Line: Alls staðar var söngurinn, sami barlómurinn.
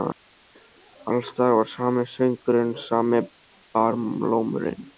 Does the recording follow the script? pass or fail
fail